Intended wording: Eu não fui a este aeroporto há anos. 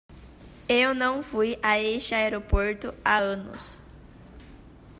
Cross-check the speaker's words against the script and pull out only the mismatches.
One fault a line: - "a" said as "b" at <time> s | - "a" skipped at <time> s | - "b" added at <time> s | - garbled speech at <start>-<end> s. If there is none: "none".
none